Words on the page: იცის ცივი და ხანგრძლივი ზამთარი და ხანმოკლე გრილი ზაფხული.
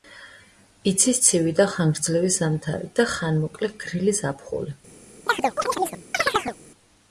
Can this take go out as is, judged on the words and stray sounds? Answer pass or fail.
fail